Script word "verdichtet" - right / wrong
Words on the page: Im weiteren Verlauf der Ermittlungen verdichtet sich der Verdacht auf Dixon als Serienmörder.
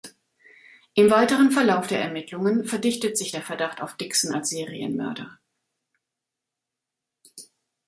right